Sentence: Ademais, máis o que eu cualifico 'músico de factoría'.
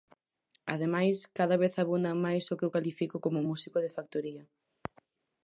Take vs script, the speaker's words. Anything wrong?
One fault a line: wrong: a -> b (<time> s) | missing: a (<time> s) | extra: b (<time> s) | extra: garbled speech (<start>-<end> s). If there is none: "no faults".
extra: cada vez abundan (1.4 s)
extra: como (3.2 s)